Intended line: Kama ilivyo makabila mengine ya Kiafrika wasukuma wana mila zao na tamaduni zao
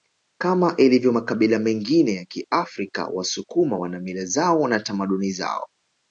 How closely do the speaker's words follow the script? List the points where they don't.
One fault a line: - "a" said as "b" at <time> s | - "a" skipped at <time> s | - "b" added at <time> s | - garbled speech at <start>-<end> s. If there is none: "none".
none